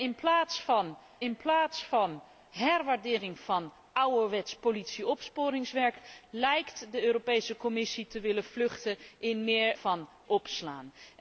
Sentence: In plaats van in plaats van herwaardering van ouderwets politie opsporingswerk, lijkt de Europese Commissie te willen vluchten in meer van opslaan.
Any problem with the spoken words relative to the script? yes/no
no